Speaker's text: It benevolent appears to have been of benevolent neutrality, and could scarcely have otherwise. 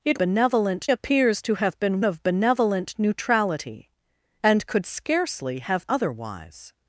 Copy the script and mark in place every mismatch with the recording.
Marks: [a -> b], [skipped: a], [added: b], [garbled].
It benevolent appears to have been of benevolent neutrality, and could scarcely have otherwise.